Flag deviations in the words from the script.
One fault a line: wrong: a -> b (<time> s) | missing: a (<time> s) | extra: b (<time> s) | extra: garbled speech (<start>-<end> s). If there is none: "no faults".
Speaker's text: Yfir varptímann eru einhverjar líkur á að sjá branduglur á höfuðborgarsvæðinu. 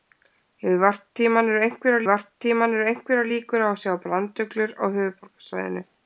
extra: varptímann eru einhverjar (2.1 s)